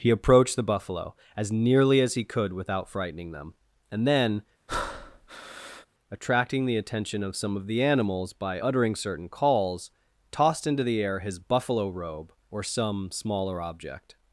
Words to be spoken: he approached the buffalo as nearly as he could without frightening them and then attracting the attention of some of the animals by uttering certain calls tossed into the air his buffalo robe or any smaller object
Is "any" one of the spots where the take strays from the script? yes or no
yes